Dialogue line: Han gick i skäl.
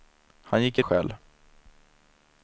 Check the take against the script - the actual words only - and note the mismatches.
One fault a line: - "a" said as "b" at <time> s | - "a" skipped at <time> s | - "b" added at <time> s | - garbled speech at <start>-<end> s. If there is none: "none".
none